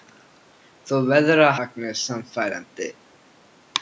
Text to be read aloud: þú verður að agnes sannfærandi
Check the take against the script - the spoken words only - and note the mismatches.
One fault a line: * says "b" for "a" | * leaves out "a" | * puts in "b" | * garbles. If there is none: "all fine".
all fine